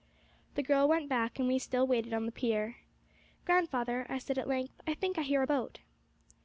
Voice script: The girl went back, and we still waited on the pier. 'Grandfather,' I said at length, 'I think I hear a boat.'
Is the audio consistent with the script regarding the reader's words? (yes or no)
yes